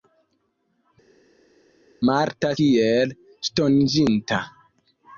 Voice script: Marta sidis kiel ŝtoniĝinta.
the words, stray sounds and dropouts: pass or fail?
fail